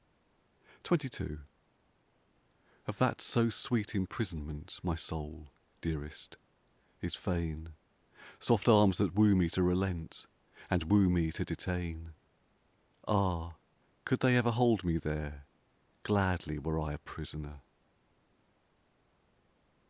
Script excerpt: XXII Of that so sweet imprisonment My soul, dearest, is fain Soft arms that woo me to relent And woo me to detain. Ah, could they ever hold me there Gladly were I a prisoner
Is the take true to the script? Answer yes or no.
yes